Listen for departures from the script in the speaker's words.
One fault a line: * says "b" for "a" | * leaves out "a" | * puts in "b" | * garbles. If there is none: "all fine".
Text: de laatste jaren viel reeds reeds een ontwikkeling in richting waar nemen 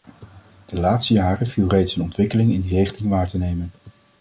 * leaves out "reeds"
* puts in "die"
* puts in "te"